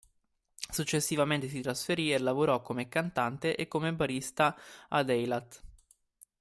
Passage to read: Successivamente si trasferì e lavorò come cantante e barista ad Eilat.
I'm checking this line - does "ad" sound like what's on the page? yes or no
yes